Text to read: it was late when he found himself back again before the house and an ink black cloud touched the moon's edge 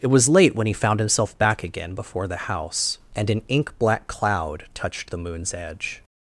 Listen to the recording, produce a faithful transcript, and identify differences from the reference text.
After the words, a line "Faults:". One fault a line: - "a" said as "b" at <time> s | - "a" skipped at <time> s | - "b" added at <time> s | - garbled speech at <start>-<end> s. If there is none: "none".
it was late when he found himself back again before the house and an ink black cloud touched the moon's edge
Faults:
none